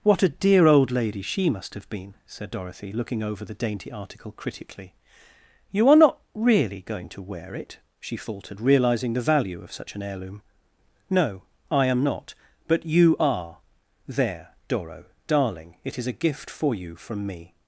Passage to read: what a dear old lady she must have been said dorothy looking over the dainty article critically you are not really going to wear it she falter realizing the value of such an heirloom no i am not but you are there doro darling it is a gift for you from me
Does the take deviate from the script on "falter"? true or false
true